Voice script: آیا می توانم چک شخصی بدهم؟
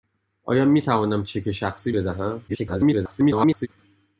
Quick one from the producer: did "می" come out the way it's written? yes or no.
yes